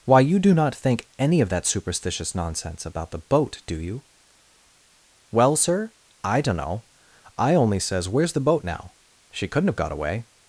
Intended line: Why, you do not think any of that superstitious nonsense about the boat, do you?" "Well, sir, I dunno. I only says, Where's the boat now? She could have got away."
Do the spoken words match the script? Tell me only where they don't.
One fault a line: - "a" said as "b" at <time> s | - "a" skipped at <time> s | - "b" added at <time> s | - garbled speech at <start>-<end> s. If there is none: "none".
- "could" said as "couldn't" at 9.5 s